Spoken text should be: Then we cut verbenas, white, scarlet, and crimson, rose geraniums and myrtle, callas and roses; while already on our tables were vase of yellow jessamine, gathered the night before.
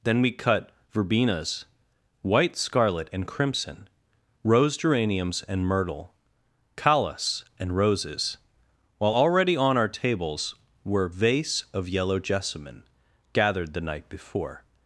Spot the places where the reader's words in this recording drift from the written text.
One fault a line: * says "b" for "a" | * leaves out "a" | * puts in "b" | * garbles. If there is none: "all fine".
all fine